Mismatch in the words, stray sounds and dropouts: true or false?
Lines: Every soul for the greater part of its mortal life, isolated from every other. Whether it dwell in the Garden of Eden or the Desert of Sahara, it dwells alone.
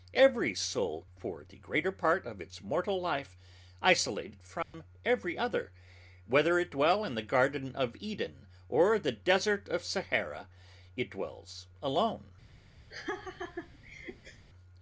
true